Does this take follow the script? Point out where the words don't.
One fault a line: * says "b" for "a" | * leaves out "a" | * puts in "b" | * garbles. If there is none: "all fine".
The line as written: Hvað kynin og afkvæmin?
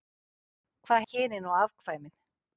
all fine